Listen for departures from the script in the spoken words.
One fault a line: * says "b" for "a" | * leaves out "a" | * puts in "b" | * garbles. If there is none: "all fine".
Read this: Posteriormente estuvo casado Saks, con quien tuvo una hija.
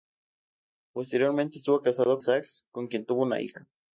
all fine